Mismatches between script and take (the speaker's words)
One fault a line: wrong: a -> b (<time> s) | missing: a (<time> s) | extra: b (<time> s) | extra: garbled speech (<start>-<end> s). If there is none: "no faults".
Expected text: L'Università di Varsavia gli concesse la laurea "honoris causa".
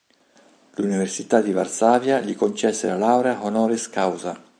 no faults